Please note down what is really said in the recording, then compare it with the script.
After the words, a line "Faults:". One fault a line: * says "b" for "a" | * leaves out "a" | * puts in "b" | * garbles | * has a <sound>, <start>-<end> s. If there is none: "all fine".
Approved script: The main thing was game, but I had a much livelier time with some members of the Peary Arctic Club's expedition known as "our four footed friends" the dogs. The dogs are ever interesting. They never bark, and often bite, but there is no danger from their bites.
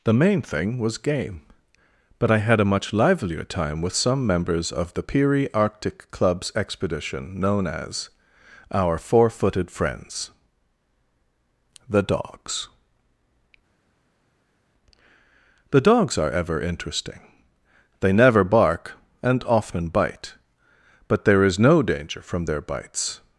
The main thing was game, but I had a much livelier time with some members of the Peary Arctic Club's expedition known as "our four footed friends" the dogs. The dogs are ever interesting. They never bark, and often bite, but there is no danger from their bites.
Faults:
all fine